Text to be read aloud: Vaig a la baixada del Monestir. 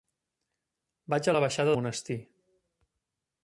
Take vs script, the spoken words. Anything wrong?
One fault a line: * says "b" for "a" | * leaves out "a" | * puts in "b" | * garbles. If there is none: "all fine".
* leaves out "del"